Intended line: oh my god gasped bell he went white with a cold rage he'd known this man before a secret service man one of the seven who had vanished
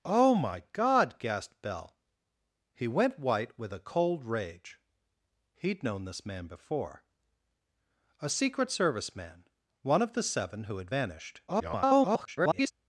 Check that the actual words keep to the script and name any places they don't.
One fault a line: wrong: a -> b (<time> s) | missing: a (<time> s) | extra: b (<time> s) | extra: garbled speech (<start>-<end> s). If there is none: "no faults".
extra: garbled speech (11.5-12.7 s)